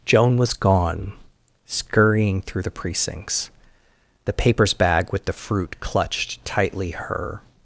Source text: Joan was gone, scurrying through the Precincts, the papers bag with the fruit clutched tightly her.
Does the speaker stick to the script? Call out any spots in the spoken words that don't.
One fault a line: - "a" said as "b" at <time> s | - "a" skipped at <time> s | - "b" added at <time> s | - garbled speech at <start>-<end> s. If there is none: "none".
none